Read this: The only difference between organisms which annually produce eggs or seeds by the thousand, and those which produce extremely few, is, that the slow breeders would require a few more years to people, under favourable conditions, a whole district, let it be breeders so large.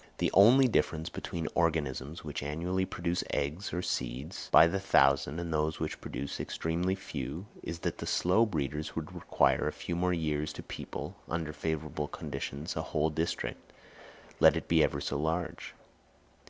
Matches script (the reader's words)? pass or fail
fail